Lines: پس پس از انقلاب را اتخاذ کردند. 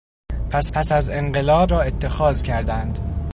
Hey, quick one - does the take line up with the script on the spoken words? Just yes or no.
yes